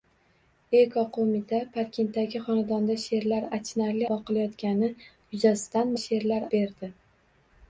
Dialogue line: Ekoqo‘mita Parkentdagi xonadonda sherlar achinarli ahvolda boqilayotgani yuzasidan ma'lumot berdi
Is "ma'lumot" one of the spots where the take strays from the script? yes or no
yes